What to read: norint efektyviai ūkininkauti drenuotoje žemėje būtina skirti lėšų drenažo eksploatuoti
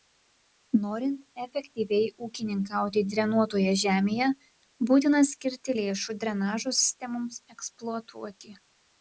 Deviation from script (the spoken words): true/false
true